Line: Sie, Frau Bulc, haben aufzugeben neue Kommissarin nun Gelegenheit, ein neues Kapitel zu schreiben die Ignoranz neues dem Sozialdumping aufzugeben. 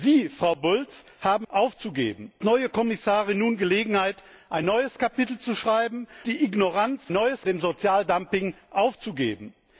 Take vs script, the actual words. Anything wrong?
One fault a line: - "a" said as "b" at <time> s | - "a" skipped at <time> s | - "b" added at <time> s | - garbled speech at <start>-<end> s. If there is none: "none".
none